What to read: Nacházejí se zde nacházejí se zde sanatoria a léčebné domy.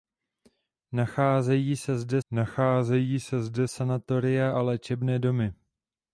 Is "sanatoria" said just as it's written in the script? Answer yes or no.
yes